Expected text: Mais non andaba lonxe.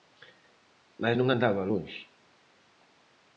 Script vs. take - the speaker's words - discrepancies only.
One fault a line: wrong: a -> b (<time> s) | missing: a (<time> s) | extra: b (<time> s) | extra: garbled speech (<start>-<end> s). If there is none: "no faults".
no faults